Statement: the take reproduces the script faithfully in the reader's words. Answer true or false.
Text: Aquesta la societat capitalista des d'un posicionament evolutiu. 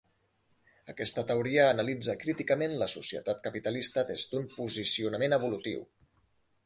false